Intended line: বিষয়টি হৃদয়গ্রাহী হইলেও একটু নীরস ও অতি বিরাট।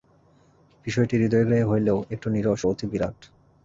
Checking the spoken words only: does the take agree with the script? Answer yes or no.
yes